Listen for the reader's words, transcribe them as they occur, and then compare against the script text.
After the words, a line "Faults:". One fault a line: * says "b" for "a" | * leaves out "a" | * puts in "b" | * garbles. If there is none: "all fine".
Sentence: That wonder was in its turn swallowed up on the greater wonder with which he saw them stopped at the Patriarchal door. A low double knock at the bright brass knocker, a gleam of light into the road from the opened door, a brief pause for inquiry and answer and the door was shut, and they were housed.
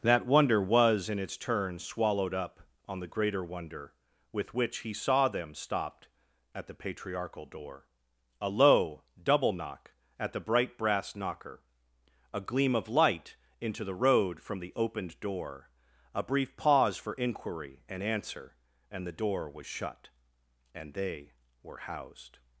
That wonder was in its turn swallowed up on the greater wonder with which he saw them stopped at the Patriarchal door. A low double knock at the bright brass knocker, a gleam of light into the road from the opened door, a brief pause for inquiry and answer and the door was shut, and they were housed.
Faults:
all fine